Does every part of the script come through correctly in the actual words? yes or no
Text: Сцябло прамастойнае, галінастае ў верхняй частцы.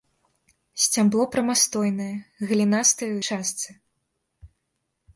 no